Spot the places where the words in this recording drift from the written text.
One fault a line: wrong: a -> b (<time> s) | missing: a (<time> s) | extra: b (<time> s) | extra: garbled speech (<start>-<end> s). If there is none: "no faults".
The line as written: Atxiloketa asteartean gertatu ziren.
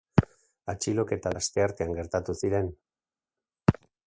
no faults